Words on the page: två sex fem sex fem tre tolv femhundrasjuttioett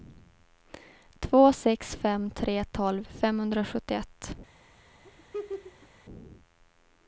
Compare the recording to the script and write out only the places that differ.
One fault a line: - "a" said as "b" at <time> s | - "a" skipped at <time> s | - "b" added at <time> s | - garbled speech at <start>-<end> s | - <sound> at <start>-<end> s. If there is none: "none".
- "sex fem" skipped at 2.3 s
- laugh at 5.0-5.9 s